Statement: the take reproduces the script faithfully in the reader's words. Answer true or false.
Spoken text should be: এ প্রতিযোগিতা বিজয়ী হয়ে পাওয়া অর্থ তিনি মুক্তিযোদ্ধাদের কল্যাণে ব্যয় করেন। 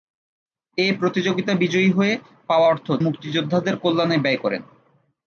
false